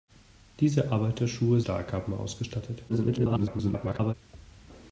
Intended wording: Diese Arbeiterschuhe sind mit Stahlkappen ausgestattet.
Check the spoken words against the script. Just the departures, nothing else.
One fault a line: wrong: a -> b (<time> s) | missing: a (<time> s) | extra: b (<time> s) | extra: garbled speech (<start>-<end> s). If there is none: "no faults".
missing: sind mit (1.6 s)
extra: garbled speech (2.9-4.1 s)